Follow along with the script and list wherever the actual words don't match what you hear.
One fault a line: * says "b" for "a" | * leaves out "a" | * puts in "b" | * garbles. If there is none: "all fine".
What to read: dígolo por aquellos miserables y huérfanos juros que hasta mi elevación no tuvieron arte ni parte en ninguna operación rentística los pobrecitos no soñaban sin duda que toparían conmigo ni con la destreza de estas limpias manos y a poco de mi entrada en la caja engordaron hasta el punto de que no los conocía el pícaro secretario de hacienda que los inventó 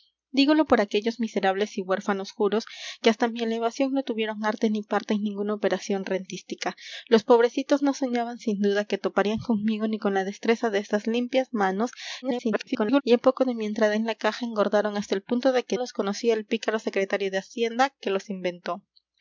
* garbles
* leaves out "no"